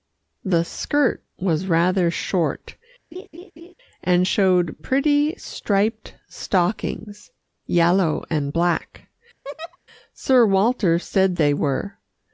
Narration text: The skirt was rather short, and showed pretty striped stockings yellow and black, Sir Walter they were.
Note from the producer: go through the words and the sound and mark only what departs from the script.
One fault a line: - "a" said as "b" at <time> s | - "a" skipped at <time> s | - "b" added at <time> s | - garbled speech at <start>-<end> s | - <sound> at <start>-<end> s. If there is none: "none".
- laugh at 3.1-3.7 s
- laugh at 9.4-9.8 s
- "said" added at 11.0 s